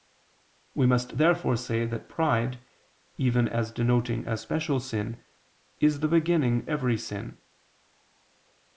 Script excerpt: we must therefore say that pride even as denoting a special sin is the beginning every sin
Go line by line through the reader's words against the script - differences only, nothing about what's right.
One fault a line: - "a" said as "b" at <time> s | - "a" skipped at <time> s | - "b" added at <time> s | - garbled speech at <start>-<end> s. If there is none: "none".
none